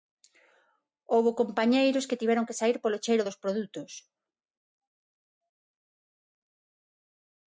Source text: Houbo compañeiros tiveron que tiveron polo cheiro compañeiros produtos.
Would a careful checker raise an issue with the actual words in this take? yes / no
yes